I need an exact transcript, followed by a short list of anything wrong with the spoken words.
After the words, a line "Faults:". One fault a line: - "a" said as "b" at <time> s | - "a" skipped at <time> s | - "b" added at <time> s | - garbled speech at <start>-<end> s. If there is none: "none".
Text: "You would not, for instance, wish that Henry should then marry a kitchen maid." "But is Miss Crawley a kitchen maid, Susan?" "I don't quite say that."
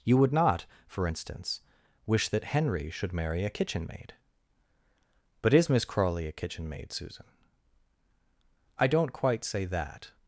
"You would not, for instance, wish that Henry should marry a kitchen maid." "But is Miss Crawley a kitchen maid, Susan?" "I don't quite say that."
Faults:
- "then" skipped at 3.1 s